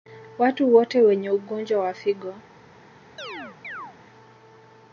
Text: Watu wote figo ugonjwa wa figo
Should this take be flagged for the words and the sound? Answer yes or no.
yes